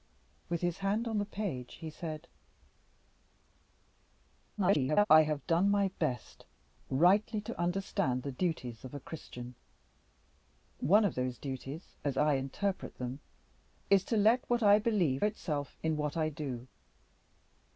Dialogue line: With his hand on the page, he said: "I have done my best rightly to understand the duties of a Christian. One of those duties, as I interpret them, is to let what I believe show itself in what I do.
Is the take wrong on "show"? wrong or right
wrong